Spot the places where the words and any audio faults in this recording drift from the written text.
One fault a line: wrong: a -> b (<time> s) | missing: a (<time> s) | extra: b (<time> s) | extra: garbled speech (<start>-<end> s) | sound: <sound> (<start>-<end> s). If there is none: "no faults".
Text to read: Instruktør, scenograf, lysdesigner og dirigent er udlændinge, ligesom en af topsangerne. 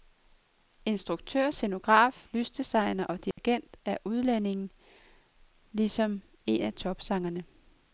sound: dropout (3.3-3.4 s)